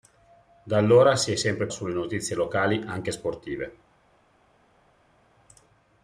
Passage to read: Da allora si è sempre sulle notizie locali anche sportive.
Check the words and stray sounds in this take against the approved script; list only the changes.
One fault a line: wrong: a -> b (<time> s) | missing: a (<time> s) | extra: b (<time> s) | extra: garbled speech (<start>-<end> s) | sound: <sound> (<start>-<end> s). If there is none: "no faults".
no faults